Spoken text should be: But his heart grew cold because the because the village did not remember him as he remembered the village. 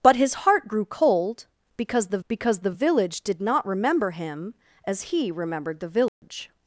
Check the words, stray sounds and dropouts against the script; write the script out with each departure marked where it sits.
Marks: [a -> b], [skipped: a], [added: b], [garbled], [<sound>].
But his heart grew cold because the because the village did not remember him as he remembered the village. [dropout]